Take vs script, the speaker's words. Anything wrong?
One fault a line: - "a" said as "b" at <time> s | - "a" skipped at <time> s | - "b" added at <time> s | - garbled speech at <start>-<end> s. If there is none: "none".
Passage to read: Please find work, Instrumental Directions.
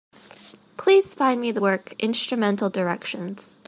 - "me the" added at 1.4 s